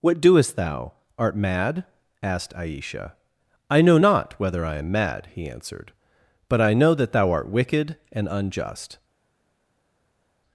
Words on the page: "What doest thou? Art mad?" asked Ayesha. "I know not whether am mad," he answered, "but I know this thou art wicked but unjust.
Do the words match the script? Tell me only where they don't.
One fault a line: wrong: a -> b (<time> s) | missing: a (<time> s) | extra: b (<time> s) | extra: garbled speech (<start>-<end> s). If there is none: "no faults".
extra: I (4.6 s)
wrong: this -> that (6.9 s)
wrong: but -> and (8.1 s)